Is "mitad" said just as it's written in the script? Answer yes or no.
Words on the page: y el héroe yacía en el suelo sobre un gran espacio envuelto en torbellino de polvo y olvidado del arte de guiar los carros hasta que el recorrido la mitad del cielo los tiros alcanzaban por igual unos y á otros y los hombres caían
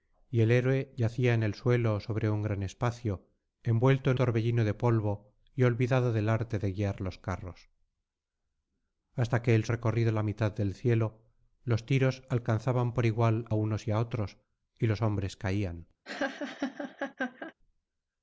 yes